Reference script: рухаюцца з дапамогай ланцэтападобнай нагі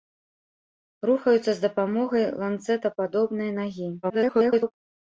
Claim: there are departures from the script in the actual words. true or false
true